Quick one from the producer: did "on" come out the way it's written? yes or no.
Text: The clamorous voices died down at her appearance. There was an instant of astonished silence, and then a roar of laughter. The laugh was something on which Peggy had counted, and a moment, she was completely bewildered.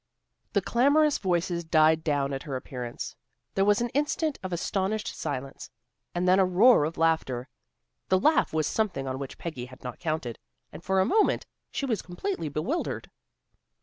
yes